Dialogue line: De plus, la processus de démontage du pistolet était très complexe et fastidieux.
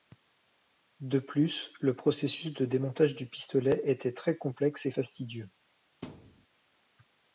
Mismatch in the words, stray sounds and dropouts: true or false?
true